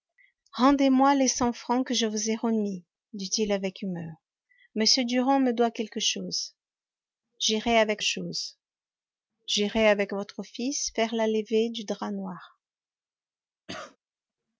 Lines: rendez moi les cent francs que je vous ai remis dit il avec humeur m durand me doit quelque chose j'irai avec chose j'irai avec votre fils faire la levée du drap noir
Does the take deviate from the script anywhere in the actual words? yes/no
no